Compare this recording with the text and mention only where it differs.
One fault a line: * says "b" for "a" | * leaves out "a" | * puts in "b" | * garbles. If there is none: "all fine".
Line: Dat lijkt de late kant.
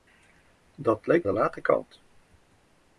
all fine